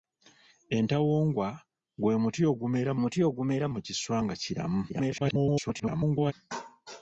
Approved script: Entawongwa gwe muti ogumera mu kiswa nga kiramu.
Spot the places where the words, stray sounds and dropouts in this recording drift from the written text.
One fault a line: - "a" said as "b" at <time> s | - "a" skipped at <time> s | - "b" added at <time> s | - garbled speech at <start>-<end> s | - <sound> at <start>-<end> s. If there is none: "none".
- "muti ogumera" added at 3.0 s
- garbled speech at 4.9-6.3 s